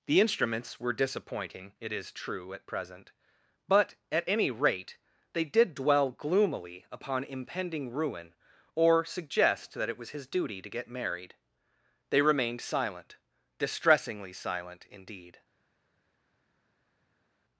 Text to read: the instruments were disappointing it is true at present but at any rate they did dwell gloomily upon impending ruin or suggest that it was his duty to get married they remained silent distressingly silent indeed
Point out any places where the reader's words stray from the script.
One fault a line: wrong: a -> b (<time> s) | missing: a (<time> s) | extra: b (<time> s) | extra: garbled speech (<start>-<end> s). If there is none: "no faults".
no faults